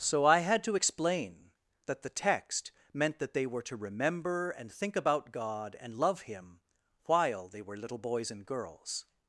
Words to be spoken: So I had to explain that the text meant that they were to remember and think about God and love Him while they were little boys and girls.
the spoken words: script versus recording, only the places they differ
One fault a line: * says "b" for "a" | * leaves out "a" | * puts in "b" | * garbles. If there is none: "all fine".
all fine